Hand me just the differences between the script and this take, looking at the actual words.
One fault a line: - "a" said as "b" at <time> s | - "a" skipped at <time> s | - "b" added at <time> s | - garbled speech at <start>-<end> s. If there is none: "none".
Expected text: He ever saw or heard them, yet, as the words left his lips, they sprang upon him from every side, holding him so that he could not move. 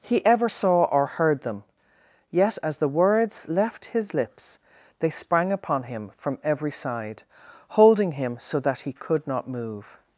none